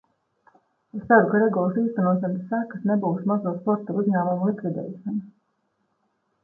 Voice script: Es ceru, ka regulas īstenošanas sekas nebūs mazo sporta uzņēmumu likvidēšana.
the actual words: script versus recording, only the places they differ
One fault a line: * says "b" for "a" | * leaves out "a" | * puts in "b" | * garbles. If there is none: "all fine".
all fine